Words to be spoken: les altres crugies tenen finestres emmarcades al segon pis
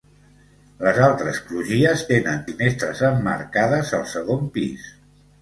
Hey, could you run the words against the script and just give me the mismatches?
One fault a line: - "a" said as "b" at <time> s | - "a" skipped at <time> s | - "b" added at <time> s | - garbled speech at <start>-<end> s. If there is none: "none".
none